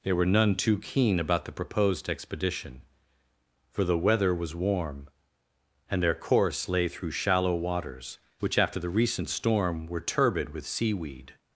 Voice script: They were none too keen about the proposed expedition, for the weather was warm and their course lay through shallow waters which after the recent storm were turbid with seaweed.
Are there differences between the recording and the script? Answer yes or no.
no